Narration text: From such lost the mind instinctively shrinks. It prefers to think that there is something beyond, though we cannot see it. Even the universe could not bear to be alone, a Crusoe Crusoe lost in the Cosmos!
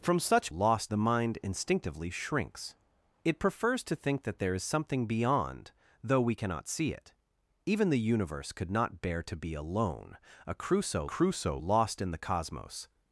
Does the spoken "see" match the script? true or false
true